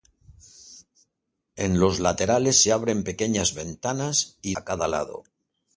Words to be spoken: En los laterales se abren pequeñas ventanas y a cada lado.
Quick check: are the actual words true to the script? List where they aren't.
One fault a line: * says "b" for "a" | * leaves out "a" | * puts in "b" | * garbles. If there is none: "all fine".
all fine